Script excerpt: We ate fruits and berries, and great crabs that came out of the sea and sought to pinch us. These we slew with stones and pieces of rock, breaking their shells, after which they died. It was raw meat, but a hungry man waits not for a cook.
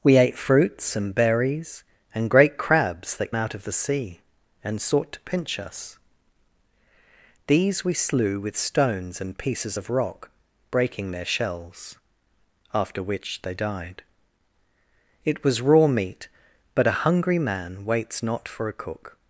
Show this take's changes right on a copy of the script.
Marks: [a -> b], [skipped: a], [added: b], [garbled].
We ate fruits and berries, and great crabs that [skipped: came] out of the sea and sought to pinch us. These we slew with stones and pieces of rock, breaking their shells, after which they died. It was raw meat, but a hungry man waits not for a cook.